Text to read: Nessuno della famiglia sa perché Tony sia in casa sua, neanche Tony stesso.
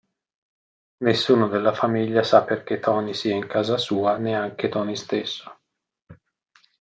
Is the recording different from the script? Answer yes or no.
no